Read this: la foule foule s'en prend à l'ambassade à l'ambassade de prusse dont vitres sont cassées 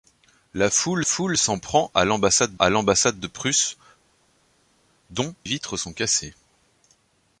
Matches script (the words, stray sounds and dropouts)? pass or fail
pass